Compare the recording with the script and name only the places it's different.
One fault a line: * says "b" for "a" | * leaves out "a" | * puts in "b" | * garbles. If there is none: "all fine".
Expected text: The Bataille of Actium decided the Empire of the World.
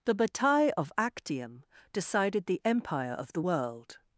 all fine